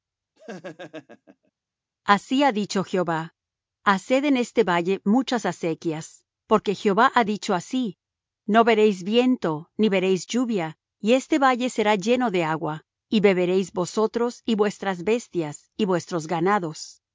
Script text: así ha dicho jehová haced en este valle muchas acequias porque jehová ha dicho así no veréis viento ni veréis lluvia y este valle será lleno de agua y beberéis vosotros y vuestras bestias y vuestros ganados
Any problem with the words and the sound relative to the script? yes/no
yes